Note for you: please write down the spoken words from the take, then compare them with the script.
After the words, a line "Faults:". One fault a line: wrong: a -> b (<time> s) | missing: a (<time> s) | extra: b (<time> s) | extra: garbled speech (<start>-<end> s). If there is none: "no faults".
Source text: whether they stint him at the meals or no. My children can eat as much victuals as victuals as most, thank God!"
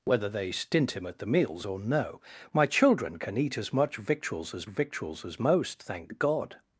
whether they stint him at the meals or no. My children can eat as much victuals as victuals as most, thank God!"
Faults:
no faults